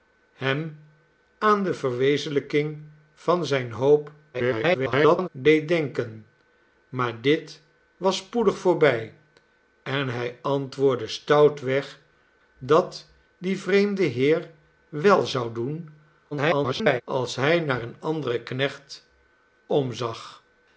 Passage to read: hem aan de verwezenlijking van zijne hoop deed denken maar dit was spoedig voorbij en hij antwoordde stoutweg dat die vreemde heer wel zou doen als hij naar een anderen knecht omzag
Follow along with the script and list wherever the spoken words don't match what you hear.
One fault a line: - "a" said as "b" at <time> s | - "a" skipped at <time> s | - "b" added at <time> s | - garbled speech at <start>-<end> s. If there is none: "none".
- garbled speech at 4.3-5.3 s
- garbled speech at 16.3-17.0 s